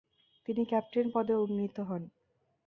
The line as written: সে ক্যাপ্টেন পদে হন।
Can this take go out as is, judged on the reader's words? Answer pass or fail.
fail